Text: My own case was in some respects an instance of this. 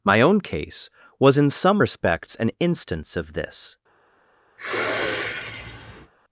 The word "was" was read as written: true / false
true